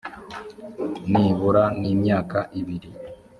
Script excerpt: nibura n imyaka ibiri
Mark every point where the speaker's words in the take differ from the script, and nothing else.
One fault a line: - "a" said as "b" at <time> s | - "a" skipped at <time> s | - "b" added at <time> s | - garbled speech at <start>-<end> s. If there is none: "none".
none